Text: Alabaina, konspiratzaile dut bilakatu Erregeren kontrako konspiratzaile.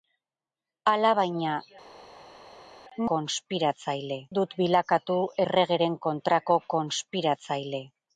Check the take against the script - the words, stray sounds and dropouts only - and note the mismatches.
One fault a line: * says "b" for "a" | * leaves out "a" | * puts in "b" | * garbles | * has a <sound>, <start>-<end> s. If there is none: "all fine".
all fine